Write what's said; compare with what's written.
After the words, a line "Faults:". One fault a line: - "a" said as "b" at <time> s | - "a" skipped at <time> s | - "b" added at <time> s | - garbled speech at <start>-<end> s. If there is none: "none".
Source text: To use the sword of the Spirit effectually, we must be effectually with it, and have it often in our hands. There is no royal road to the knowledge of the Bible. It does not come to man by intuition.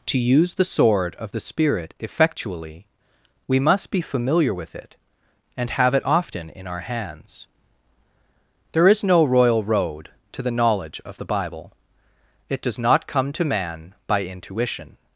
To use the sword of the Spirit effectually, we must be familiar with it, and have it often in our hands. There is no royal road to the knowledge of the Bible. It does not come to man by intuition.
Faults:
- "effectually" said as "familiar" at 4.0 s